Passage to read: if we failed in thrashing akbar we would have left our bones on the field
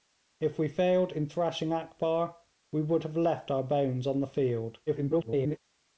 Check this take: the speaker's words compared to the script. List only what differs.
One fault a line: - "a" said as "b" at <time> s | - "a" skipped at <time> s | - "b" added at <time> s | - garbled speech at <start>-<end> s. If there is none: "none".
- garbled speech at 4.9-5.6 s